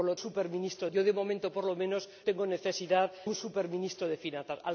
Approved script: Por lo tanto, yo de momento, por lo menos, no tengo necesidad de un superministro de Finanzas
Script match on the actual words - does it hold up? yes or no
no